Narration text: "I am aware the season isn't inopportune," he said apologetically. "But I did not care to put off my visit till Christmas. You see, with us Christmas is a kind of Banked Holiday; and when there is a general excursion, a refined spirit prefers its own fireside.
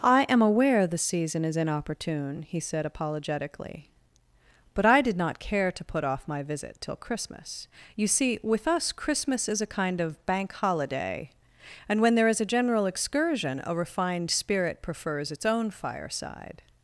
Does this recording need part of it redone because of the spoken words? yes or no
yes